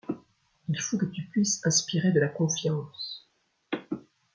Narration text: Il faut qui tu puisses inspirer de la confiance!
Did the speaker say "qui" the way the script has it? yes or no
no